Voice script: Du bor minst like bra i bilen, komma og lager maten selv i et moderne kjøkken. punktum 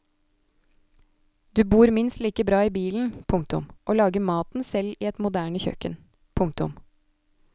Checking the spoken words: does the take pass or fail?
fail